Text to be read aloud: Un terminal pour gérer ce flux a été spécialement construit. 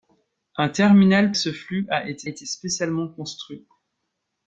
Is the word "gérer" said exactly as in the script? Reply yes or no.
no